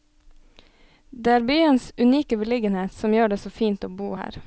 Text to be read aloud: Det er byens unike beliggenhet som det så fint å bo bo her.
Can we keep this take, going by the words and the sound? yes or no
no